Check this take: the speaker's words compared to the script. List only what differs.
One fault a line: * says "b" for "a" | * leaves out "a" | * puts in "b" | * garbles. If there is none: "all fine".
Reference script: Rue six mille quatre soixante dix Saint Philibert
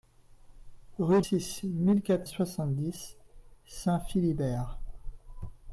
all fine